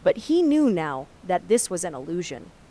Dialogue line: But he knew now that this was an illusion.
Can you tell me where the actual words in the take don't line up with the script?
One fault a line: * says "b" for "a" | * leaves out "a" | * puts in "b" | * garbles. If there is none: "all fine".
all fine